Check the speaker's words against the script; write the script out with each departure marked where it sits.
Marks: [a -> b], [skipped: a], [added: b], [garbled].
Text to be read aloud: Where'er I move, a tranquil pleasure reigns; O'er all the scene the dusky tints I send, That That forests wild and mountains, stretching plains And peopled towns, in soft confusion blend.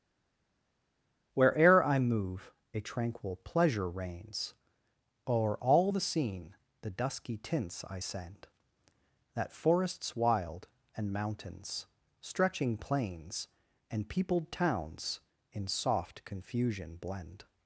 Where'er I move, a tranquil pleasure reigns; O'er all the scene the dusky tints I send, That [skipped: That] forests wild and mountains, stretching plains And peopled towns, in soft confusion blend.